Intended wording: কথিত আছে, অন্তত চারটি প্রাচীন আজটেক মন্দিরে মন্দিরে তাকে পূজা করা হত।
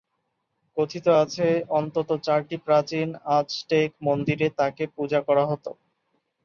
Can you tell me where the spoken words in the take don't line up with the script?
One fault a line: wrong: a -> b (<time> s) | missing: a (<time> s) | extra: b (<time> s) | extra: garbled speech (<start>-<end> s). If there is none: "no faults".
missing: মন্দিরে (4.5 s)